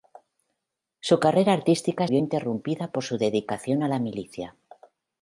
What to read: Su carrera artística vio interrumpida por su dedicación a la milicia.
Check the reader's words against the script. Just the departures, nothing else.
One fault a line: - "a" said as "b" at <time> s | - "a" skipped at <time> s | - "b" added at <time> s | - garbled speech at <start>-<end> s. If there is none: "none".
none